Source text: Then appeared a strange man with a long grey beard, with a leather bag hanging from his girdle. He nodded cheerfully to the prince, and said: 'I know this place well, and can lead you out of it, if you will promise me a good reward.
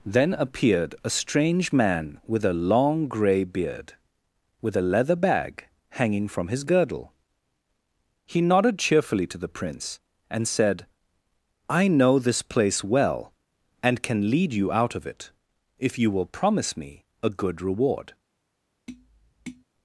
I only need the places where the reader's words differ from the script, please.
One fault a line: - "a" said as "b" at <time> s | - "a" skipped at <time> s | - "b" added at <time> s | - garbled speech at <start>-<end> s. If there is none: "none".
none